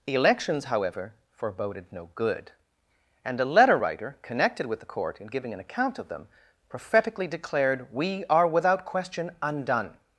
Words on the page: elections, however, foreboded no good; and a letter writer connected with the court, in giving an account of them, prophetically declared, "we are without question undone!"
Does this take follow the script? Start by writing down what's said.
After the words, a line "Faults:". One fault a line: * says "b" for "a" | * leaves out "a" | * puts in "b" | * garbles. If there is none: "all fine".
elections, however, foreboded no good; and a letter writer connected with the court, in giving an account of them, prophetically declared, "we are without question undone!"
Faults:
all fine